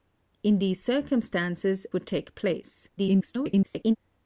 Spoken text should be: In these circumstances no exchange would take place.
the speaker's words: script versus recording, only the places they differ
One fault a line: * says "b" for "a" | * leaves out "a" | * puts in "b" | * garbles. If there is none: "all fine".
* leaves out "no exchange"
* garbles